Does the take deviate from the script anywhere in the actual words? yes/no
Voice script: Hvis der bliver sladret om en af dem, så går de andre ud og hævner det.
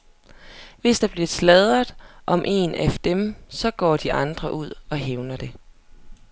no